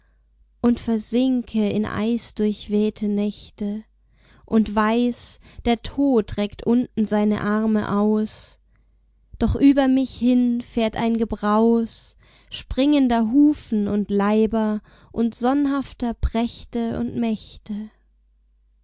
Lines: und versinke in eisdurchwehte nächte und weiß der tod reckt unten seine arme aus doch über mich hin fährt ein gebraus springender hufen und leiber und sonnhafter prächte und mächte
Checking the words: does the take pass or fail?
pass